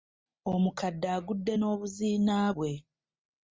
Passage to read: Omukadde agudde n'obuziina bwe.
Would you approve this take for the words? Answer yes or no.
yes